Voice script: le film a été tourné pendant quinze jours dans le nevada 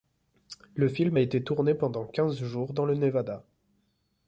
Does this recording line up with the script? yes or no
yes